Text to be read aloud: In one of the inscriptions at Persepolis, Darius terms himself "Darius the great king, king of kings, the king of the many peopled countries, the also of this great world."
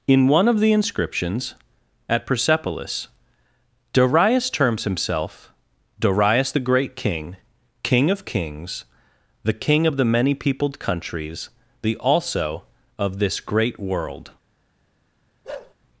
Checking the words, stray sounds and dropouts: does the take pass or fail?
fail